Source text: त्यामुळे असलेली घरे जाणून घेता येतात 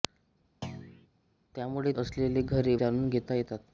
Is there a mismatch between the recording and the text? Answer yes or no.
no